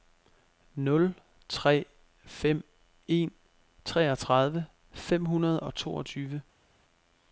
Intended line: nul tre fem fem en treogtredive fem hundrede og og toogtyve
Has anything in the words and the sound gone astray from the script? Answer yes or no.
yes